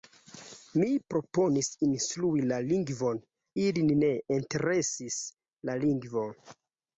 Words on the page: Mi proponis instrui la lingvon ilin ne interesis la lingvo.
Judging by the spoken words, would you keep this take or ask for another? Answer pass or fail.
pass